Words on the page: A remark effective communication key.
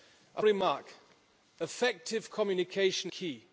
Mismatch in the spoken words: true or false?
false